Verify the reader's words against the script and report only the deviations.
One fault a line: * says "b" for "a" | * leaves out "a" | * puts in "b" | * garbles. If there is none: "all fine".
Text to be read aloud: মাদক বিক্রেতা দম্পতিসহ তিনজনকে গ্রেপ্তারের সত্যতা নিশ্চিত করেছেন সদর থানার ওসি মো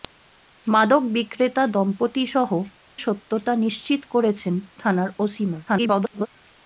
* leaves out "তিনজনকে গ্রেপ্তারের"
* leaves out "সদর"
* garbles